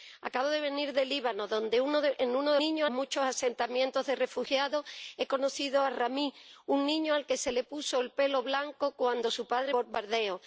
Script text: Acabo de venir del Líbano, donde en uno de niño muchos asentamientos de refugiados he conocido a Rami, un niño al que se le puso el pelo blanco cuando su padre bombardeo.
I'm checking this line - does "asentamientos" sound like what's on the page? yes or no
yes